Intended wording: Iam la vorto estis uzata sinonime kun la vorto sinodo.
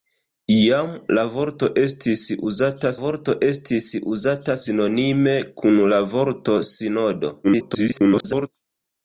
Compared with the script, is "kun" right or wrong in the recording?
right